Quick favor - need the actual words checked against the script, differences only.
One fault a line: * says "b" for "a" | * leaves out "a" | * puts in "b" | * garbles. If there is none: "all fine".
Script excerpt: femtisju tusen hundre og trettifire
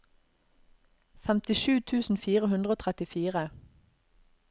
* puts in "fire"